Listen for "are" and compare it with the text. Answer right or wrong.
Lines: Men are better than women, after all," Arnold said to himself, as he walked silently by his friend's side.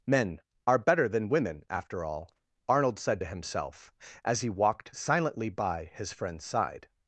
right